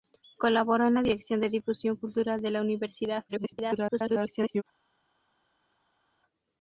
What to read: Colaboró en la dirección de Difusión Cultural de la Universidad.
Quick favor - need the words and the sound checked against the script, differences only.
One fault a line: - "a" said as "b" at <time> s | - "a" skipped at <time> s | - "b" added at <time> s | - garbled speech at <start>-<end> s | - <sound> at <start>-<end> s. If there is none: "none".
- garbled speech at 3.3-4.6 s